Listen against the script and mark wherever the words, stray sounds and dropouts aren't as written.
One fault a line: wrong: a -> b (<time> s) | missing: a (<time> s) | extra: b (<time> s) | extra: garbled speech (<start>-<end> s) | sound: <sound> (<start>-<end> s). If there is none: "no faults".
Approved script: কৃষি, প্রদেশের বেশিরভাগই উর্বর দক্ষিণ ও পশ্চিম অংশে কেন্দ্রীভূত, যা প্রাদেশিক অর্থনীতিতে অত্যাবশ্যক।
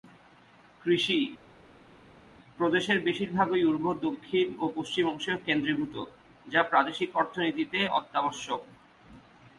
no faults